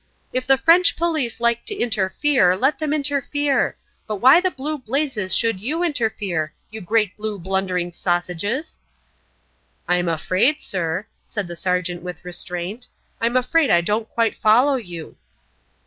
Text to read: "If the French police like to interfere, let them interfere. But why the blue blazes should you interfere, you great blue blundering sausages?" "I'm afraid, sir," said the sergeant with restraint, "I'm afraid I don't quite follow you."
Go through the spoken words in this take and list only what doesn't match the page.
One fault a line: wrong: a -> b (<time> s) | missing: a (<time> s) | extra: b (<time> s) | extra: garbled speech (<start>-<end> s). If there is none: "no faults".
no faults